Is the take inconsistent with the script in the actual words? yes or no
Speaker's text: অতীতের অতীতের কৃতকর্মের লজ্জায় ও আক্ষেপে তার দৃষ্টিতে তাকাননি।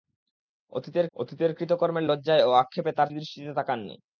no